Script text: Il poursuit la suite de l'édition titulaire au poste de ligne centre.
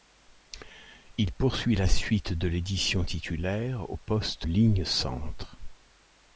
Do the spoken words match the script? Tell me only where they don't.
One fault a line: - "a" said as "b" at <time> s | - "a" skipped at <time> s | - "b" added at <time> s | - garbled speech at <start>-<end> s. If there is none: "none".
- "de" skipped at 4.5 s